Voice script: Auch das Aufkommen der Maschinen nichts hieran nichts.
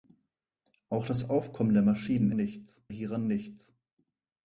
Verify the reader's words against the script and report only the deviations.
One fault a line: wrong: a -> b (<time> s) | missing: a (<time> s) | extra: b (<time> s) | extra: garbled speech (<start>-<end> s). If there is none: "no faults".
no faults